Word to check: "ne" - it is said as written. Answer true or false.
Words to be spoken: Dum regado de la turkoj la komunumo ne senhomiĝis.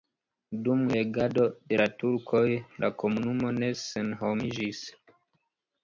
true